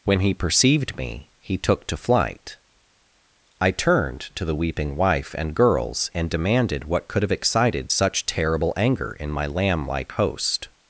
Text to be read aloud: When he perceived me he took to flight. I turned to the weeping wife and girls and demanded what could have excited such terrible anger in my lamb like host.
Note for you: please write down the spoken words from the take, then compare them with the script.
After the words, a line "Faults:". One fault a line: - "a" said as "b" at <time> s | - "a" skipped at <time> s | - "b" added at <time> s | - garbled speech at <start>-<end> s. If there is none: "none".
When he perceived me he took to flight. I turned to the weeping wife and girls and demanded what could have excited such terrible anger in my lamb like host.
Faults:
none